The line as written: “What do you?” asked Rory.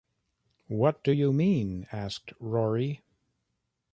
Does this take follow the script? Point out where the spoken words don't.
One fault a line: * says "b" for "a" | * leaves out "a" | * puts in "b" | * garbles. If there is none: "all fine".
* puts in "mean"